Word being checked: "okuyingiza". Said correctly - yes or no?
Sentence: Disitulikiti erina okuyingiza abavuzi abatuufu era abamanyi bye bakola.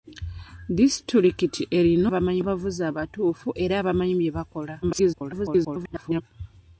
no